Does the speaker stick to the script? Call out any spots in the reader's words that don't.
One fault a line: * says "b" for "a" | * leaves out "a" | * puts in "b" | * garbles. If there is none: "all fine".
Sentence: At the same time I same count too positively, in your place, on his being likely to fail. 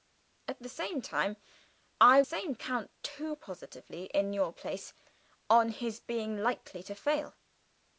all fine